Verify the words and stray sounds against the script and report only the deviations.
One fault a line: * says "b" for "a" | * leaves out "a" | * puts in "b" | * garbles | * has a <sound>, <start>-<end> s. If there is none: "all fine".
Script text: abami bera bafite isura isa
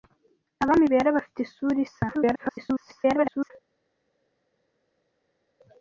* garbles